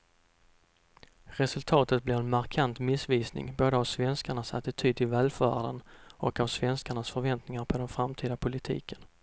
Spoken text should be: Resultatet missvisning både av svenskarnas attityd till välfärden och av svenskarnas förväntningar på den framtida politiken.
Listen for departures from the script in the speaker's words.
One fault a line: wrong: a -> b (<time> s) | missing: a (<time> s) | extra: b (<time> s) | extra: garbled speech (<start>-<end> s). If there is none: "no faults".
extra: blir en markant (2.0 s)